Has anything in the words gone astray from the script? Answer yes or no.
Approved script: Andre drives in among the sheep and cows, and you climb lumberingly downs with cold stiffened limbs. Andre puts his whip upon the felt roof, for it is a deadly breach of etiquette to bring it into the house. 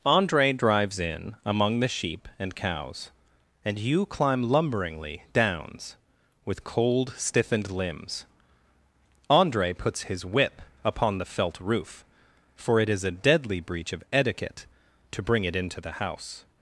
no